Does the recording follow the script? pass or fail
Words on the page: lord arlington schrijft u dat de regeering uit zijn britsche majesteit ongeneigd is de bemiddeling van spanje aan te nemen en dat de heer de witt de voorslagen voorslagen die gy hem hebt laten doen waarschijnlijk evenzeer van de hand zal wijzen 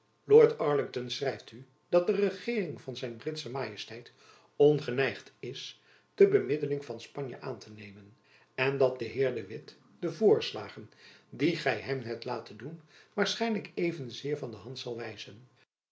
fail